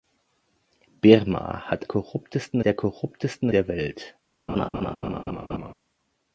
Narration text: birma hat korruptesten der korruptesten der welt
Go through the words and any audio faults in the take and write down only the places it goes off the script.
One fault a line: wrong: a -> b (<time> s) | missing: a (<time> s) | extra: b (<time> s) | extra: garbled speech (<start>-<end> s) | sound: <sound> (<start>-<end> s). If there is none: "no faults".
sound: laugh (4.5-5.7 s)